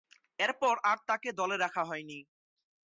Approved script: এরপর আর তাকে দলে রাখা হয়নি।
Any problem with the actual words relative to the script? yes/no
no